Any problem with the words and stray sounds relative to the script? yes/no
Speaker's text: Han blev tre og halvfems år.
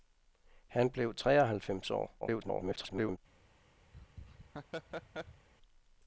yes